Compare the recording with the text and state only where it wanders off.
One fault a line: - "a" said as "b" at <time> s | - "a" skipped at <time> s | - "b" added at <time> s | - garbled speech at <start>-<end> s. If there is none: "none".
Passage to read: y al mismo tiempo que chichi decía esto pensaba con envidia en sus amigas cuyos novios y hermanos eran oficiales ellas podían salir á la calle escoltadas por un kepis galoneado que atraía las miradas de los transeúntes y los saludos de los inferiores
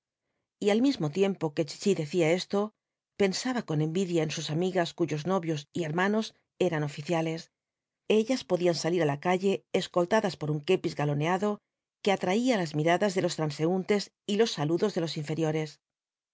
none